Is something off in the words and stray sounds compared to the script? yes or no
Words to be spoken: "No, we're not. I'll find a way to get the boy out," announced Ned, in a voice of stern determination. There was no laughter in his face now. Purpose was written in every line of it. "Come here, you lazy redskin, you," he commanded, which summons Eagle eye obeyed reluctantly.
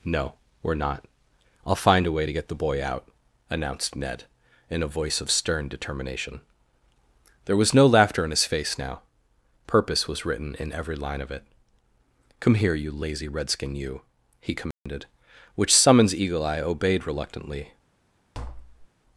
yes